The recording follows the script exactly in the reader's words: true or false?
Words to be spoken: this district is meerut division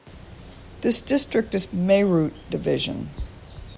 true